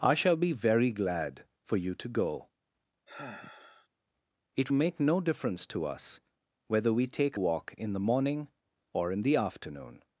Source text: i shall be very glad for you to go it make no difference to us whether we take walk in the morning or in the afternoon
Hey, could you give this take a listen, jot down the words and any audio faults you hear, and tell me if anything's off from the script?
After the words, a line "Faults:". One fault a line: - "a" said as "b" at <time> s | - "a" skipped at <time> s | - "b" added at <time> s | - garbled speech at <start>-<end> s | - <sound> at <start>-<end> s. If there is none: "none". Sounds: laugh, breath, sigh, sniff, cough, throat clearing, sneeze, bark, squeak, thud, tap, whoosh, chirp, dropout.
i shall be very glad for you to go it make no difference to us whether we take walk in the morning or in the afternoon
Faults:
- sigh at 3.1-3.9 s